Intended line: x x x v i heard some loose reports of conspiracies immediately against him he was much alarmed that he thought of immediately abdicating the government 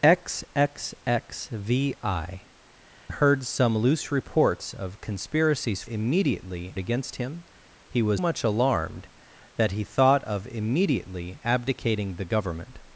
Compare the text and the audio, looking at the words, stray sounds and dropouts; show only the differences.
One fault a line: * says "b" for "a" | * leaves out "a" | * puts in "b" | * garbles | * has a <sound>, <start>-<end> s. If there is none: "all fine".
all fine